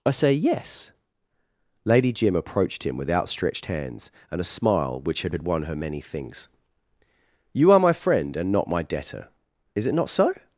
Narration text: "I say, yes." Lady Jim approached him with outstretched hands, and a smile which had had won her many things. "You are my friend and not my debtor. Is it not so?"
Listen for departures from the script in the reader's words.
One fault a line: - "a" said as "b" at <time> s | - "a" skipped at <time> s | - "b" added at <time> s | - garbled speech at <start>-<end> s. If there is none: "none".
none